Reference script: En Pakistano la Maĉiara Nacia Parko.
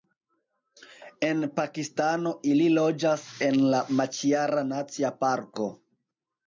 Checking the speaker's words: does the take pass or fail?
fail